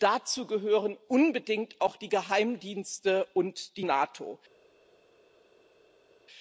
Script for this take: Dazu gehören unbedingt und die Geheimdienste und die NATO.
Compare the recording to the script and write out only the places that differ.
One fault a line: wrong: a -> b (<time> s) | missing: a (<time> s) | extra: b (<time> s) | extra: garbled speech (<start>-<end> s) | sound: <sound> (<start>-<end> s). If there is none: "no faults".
wrong: und -> auch (1.8 s)